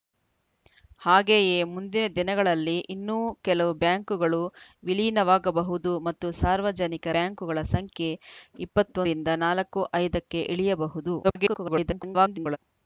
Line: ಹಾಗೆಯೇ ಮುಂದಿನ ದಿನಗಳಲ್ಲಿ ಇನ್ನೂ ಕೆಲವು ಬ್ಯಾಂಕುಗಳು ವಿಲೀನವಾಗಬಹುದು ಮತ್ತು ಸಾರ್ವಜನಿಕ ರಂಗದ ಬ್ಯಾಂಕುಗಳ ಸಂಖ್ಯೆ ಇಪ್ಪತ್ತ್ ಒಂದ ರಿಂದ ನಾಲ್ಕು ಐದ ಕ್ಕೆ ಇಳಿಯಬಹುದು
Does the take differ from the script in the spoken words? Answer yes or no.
yes